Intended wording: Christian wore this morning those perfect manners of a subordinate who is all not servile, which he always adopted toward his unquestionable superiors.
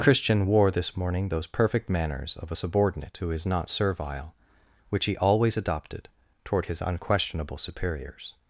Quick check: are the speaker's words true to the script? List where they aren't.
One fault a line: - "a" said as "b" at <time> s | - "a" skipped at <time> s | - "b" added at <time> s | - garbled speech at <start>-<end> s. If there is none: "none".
- "all" skipped at 3.4 s